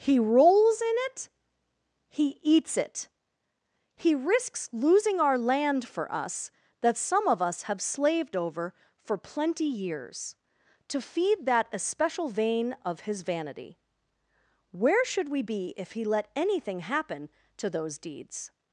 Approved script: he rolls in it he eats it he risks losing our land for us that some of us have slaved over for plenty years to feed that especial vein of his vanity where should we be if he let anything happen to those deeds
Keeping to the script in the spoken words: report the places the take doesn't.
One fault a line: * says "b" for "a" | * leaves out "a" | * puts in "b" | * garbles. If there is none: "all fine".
all fine